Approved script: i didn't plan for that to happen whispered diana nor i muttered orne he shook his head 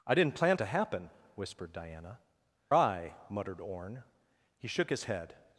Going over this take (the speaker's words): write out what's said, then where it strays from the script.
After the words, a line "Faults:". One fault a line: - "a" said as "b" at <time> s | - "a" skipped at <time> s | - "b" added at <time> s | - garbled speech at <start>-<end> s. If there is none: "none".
i didn't plan to happen whispered diana i muttered orne he shook his head
Faults:
- "for that" skipped at 0.6 s
- "nor" skipped at 2.2 s